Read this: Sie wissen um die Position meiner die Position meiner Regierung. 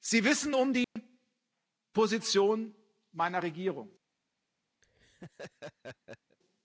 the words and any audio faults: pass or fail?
fail